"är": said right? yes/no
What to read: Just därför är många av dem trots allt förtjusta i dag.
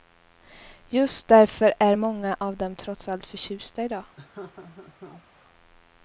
yes